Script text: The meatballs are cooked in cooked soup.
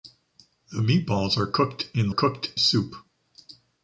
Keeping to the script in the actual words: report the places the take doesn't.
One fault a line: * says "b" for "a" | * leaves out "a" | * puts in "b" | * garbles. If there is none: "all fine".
all fine